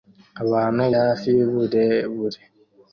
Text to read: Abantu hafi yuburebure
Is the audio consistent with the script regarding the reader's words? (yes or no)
yes